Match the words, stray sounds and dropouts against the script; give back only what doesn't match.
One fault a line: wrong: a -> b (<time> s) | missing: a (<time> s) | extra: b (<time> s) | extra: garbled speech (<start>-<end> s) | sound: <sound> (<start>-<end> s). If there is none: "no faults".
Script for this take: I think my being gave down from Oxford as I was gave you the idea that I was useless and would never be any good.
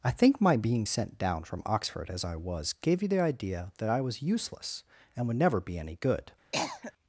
wrong: gave -> sent (0.8 s)
sound: cough (6.5-6.9 s)